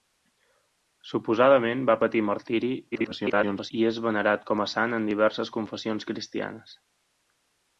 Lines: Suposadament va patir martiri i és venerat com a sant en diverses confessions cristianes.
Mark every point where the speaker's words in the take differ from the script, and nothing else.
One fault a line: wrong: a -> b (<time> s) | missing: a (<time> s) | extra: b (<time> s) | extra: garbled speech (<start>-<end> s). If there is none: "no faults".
extra: garbled speech (2.9-3.7 s)